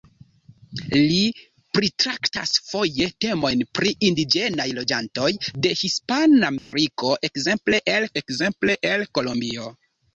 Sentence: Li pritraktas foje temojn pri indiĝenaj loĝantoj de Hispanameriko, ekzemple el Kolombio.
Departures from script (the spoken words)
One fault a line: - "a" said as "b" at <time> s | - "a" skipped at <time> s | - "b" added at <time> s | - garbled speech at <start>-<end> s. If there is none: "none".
- "ekzemple el" added at 8.2 s